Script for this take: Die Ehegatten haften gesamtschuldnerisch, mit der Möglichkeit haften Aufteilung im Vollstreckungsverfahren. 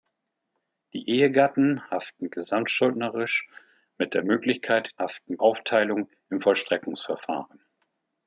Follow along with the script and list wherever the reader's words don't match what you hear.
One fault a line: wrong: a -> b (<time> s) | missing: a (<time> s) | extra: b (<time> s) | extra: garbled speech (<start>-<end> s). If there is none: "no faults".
no faults